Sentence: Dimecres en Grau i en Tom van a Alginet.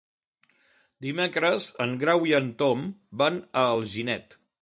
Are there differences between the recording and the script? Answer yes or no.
no